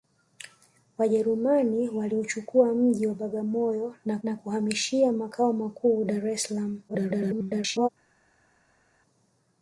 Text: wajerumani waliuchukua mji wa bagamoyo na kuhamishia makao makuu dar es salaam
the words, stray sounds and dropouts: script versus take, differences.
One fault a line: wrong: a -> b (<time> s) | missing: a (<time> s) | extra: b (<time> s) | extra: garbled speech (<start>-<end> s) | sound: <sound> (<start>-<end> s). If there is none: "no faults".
extra: na (4.2 s)
extra: garbled speech (6.9-7.9 s)